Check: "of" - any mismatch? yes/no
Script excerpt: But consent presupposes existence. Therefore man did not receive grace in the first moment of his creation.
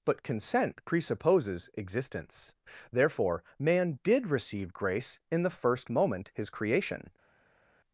yes